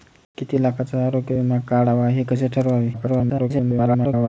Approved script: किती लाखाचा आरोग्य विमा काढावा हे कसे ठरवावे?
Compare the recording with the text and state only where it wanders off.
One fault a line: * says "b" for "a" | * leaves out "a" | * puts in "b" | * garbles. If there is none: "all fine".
* garbles